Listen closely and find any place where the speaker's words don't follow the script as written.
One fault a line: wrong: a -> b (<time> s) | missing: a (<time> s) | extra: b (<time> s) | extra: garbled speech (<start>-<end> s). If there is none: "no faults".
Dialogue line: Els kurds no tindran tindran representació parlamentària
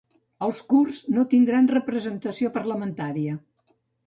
missing: tindran (1.7 s)